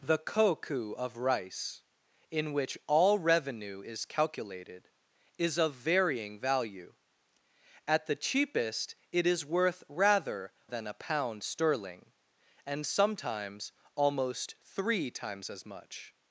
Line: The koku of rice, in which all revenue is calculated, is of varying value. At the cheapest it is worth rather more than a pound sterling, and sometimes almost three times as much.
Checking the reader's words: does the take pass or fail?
fail